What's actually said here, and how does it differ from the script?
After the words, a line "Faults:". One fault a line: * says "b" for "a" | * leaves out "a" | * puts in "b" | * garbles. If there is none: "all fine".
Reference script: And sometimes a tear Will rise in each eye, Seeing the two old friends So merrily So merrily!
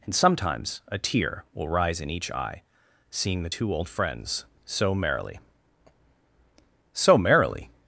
And sometimes a tear Will rise in each eye, Seeing the two old friends So merrily So merrily!
Faults:
all fine